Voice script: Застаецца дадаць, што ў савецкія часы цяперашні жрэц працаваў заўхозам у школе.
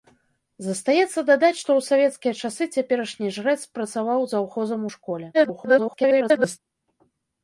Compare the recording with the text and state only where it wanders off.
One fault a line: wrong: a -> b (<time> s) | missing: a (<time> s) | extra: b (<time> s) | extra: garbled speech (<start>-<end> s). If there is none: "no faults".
extra: garbled speech (5.3-6.6 s)